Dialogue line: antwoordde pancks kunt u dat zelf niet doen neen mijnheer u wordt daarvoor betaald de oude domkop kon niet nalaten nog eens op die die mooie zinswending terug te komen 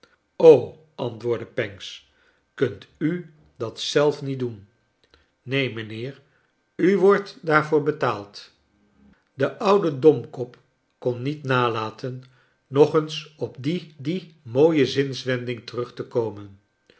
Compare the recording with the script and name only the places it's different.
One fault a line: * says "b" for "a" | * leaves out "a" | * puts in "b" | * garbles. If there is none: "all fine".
all fine